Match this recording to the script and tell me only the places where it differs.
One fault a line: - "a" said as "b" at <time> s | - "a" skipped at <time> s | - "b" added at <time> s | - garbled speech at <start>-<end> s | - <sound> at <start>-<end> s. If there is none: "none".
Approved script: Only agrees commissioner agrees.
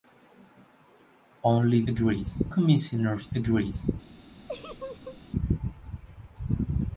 - laugh at 4.5-5.2 s